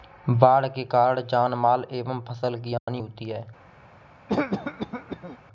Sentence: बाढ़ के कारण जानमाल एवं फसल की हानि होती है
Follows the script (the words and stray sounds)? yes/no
no